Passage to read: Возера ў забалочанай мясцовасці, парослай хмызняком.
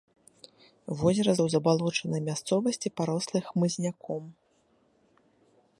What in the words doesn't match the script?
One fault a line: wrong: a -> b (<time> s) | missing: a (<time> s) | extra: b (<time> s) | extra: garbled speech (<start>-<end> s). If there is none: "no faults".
no faults